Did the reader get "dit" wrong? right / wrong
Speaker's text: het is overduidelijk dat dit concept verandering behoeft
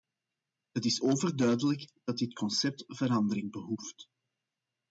right